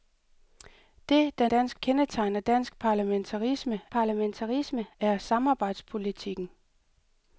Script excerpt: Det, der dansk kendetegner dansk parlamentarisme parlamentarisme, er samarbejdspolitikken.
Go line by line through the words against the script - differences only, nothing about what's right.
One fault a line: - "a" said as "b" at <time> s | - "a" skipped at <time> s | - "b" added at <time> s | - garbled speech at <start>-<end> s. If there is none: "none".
none